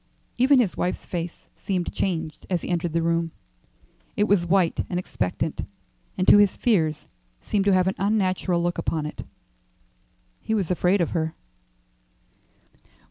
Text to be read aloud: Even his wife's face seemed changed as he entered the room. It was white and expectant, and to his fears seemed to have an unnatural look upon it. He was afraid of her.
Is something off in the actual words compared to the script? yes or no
no